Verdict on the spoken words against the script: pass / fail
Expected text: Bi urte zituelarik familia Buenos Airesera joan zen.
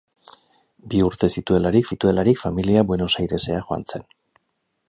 fail